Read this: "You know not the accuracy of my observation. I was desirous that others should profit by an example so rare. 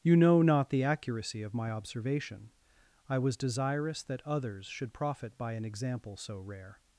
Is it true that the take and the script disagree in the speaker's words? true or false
false